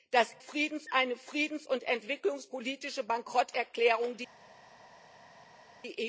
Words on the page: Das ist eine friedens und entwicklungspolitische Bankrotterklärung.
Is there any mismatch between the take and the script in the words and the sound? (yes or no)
yes